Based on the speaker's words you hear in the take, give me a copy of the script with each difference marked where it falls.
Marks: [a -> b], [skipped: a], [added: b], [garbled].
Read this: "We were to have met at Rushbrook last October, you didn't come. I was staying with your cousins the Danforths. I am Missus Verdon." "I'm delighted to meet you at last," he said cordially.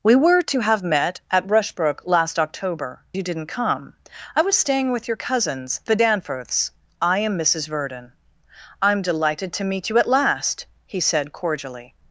"We were to have met at Rushbrook last October, you didn't come. I was staying with your cousins the Danforths. I am Missus Verdon." "I'm delighted to meet you at last," he said cordially.